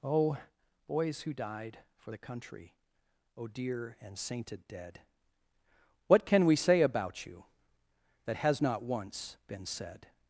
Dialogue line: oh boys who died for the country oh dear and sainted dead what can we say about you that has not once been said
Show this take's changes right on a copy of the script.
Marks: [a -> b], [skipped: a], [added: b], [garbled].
oh boys who died for the country oh dear and sainted dead what can we say about you that has not once been said